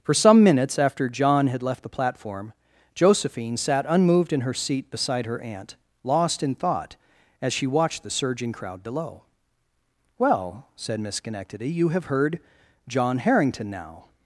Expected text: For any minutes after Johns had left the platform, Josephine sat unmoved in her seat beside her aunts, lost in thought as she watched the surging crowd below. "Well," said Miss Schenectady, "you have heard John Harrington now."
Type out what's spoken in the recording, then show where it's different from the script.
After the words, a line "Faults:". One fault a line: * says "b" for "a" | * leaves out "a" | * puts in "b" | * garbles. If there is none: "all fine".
For some minutes after John had left the platform, Josephine sat unmoved in her seat beside her aunt, lost in thought as she watched the surging crowd below. "Well," said Miss Schenectady, "you have heard John Harrington now."
Faults:
* says "some" for "any"
* says "John" for "Johns"
* says "aunt" for "aunts"